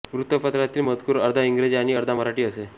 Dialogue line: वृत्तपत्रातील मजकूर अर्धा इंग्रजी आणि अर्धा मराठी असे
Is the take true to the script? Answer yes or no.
yes